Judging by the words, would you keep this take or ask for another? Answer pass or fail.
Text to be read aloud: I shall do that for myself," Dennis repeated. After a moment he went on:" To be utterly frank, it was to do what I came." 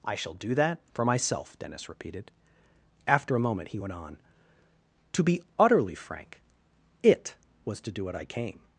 pass